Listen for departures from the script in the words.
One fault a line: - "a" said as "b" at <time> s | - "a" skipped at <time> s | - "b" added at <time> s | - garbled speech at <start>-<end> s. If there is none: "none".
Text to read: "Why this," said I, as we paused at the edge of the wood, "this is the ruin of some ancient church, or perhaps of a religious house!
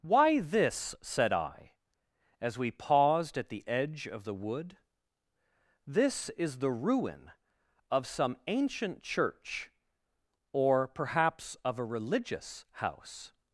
none